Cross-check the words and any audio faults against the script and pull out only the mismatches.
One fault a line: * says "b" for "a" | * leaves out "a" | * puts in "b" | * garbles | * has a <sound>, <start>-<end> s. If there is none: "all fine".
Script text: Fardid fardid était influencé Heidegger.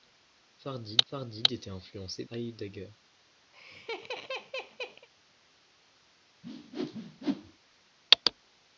* has a laugh, 3.5-5.1 s
* has a whoosh, 6.4-7.6 s